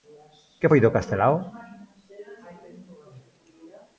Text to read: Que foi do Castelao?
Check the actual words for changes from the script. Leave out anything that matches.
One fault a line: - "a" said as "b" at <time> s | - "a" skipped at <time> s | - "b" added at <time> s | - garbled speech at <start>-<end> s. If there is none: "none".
none